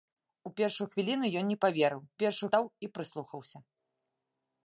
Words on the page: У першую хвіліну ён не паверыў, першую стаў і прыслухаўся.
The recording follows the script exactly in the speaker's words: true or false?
true